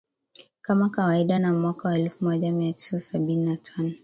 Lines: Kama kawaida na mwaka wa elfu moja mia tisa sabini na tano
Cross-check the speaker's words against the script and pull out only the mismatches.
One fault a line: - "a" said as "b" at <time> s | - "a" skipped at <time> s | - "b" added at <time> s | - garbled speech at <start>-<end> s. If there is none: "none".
none